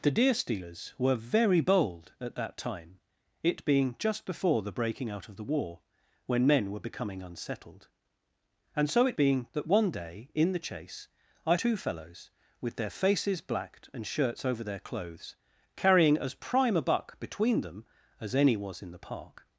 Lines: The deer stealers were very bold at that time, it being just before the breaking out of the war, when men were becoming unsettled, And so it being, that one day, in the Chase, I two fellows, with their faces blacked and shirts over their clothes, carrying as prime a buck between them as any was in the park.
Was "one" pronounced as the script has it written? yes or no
yes